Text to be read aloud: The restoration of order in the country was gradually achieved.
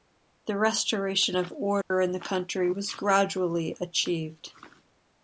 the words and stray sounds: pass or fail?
fail